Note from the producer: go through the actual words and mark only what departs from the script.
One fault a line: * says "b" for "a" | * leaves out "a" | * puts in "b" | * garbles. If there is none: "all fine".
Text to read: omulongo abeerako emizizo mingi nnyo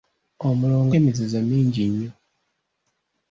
* leaves out "abeerako"